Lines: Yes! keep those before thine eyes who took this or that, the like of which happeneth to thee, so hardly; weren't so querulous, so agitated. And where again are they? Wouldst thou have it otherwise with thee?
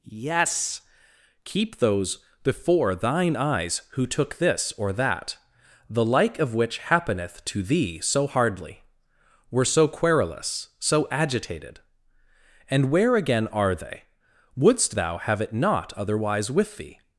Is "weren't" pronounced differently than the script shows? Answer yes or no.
yes